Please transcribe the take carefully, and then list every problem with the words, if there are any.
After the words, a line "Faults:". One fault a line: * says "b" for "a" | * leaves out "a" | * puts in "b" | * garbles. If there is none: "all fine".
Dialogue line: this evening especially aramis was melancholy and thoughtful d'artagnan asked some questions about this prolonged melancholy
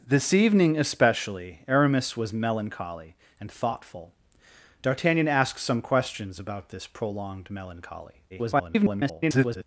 this evening especially aramis was melancholy and thoughtful d'artagnan asked some questions about this prolonged melancholy [garbled]
Faults:
* garbles